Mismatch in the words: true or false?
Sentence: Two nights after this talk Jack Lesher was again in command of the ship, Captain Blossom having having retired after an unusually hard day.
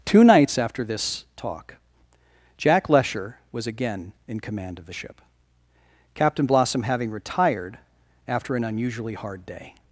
true